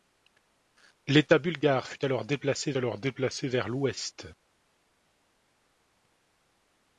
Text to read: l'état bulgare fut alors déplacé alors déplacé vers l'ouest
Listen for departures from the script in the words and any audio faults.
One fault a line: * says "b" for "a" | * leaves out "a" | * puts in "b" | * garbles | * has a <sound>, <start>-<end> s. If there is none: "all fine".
all fine